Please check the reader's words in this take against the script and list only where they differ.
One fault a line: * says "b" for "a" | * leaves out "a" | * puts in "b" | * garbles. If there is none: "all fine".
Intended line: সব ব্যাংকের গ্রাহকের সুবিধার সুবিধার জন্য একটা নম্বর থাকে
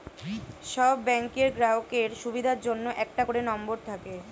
* leaves out "সুবিধার"
* puts in "করে"